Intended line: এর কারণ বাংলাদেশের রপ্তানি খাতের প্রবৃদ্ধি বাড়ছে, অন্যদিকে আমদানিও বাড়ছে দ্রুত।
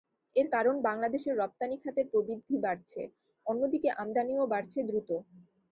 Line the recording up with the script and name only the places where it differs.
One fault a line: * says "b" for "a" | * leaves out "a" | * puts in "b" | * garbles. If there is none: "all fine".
all fine